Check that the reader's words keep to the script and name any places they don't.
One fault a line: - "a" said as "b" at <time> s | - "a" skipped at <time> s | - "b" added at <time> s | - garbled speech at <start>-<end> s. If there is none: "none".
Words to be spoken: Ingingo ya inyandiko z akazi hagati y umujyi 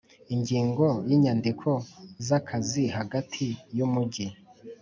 none